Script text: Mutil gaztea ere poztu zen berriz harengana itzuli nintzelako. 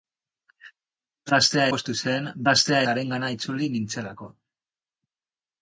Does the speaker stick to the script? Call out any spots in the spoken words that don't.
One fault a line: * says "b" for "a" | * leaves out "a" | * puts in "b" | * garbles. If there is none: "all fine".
* leaves out "ere"
* says "gaztea" for "berriz"